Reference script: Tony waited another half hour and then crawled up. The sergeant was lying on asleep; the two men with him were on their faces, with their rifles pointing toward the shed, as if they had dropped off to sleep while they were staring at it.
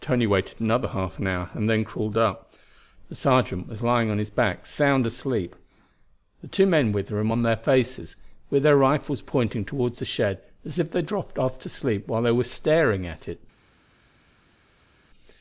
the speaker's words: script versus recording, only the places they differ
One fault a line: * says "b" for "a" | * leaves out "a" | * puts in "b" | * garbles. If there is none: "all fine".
* puts in "his back sound"